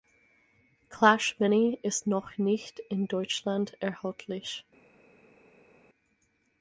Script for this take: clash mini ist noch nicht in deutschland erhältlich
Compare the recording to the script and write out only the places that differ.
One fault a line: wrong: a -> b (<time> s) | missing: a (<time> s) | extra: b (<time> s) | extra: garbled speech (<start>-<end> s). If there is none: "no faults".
no faults